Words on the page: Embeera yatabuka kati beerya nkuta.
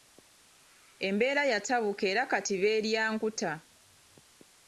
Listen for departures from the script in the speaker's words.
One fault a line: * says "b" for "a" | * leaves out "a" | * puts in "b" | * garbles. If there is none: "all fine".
* puts in "era"